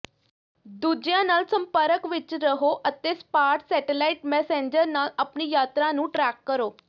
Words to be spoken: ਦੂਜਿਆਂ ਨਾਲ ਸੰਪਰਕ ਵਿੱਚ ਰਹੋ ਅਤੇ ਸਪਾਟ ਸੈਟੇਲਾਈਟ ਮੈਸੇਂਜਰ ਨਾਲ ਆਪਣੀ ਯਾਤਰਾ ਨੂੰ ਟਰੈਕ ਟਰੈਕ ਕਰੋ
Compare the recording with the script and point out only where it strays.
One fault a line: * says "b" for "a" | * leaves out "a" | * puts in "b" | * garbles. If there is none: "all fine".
* leaves out "ਟਰੈਕ"